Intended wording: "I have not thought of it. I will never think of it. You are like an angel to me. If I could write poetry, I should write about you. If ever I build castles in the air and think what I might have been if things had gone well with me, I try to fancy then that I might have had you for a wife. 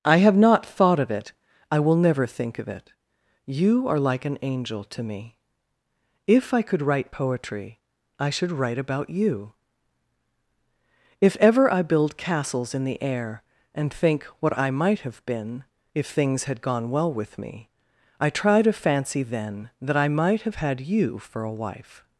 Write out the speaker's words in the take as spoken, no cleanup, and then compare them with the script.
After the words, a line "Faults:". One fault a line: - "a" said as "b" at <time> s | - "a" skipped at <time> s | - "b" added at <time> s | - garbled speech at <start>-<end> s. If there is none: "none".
"I have not thought of it. I will never think of it. You are like an angel to me. If I could write poetry, I should write about you. If ever I build castles in the air and think what I might have been if things had gone well with me, I try to fancy then that I might have had you for a wife.
Faults:
none